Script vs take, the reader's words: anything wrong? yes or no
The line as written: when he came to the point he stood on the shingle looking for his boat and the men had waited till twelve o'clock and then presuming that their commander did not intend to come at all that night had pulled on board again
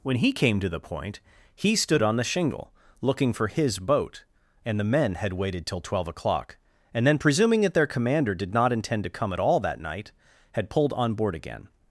no